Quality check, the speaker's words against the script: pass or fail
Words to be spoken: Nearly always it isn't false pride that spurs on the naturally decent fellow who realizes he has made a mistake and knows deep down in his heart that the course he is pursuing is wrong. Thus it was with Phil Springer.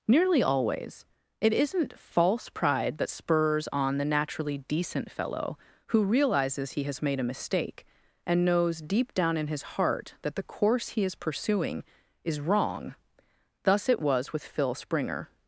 pass